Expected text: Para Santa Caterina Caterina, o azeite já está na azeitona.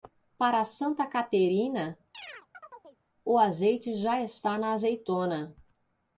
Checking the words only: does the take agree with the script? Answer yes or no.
no